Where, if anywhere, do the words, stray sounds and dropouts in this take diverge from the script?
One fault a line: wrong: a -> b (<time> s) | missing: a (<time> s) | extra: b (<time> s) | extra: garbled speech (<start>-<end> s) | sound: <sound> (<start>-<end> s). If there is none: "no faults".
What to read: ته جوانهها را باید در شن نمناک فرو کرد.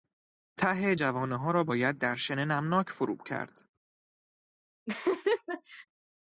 sound: laugh (4.9-5.9 s)